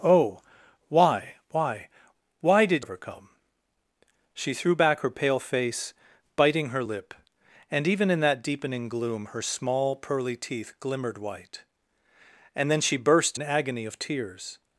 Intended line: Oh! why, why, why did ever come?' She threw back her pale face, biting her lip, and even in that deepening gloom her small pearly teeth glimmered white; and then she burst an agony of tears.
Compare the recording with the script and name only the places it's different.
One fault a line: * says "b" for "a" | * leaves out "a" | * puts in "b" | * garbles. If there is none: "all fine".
all fine